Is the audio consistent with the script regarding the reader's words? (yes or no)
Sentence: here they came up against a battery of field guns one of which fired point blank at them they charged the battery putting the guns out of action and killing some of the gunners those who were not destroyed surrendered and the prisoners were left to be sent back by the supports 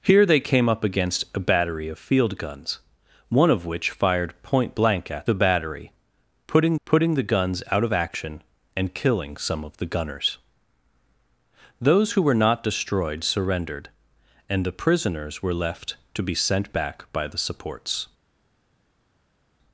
no